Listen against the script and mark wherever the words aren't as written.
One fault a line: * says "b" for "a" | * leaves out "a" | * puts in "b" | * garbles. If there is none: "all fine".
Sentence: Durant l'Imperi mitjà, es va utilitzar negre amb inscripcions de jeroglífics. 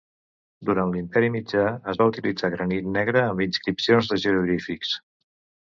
* puts in "granit"